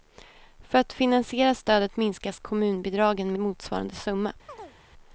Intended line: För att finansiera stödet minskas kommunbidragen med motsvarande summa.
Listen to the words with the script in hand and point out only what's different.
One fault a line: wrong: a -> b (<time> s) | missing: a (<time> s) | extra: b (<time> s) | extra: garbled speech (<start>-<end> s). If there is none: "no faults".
missing: med (3.3 s)